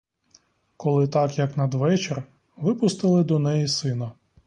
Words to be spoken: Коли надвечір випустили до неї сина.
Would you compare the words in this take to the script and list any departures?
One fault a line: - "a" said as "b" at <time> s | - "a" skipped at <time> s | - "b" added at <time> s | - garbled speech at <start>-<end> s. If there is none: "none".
- "так як" added at 1.1 s